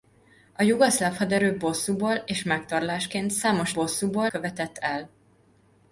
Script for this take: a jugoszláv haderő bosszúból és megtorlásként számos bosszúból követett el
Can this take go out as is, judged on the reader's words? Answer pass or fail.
pass